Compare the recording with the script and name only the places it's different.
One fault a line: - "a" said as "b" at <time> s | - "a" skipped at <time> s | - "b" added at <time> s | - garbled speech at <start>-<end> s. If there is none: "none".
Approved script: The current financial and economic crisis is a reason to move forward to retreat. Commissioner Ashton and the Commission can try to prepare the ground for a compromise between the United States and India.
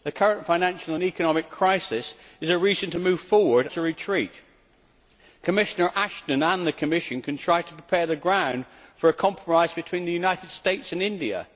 none